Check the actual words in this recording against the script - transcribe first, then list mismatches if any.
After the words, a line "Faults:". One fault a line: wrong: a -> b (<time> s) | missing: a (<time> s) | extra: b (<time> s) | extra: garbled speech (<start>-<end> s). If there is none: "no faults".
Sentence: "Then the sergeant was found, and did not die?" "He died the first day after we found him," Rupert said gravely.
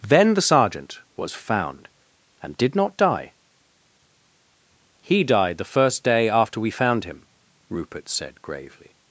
"Then the sergeant was found, and did not die?" "He died the first day after we found him," Rupert said gravely.
Faults:
no faults